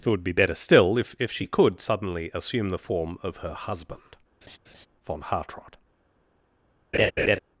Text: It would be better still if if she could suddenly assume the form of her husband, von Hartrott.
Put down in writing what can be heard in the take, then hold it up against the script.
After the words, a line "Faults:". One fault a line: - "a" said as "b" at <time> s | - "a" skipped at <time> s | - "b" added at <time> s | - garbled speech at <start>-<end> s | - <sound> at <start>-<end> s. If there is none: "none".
It would be better still if if she could suddenly assume the form of her husband, von Hartrott.
Faults:
- laugh at 4.4-4.9 s
- laugh at 6.9-7.4 s